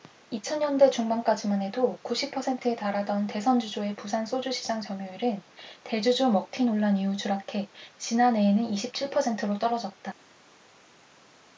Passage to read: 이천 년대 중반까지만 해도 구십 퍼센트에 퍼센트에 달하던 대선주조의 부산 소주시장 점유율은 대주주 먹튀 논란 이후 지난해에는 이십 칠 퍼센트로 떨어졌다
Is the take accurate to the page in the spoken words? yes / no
no